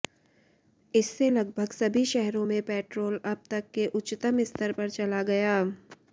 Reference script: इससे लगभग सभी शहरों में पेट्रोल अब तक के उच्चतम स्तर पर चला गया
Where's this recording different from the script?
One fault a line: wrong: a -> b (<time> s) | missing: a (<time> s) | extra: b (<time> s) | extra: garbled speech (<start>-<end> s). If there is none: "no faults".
no faults